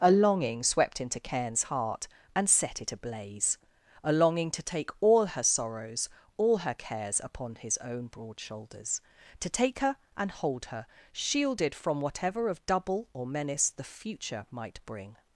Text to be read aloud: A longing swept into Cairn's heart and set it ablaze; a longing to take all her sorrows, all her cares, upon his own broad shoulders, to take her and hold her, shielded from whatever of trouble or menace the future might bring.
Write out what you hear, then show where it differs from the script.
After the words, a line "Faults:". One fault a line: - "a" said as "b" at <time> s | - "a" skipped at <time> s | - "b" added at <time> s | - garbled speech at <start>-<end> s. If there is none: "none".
A longing swept into Cairn's heart and set it ablaze; a longing to take all her sorrows, all her cares, upon his own broad shoulders, to take her and hold her, shielded from whatever of double or menace the future might bring.
Faults:
- "trouble" said as "double" at 12.7 s